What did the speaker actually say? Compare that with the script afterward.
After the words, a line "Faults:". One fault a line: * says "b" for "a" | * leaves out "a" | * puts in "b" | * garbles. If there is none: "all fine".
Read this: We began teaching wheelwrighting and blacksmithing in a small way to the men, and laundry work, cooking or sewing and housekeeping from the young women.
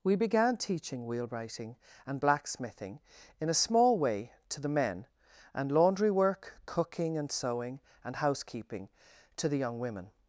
We began teaching wheelwrighting and blacksmithing in a small way to the men, and laundry work, cooking and sewing and housekeeping to the young women.
Faults:
* says "and" for "or"
* says "to" for "from"